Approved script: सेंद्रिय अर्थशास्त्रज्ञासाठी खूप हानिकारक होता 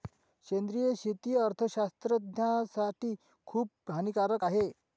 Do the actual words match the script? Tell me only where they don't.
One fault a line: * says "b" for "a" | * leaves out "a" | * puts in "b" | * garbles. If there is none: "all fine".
* puts in "शेती"
* says "आहे" for "होता"